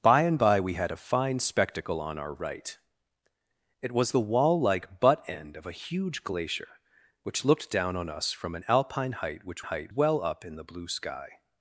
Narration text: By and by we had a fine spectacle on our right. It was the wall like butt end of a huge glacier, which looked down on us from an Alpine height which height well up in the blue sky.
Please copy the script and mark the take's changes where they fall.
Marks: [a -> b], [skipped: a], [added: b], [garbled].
By and by we had a fine spectacle on our right. It was the wall like butt end of a huge glacier, which looked down on us from an Alpine height which height well up in the blue sky.